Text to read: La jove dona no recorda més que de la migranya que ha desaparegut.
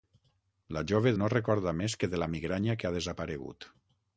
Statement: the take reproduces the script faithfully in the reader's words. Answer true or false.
false